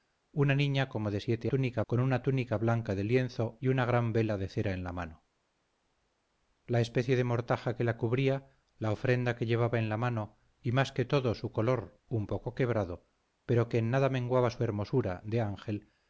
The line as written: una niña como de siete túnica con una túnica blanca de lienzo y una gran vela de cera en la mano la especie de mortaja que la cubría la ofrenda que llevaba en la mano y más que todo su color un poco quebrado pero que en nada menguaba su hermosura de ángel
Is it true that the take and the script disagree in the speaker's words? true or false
false